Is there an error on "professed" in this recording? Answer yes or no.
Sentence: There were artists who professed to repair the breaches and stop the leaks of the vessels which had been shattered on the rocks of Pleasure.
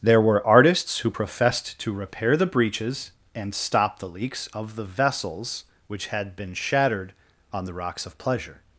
no